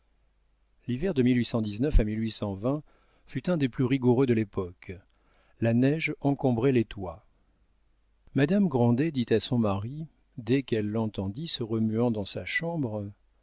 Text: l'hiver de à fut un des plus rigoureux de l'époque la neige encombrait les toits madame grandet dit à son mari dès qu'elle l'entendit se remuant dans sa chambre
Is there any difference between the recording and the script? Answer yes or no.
no